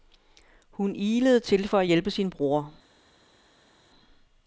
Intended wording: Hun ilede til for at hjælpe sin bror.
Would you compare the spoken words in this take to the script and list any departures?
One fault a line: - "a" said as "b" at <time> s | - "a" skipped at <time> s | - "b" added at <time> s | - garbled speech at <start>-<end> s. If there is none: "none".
none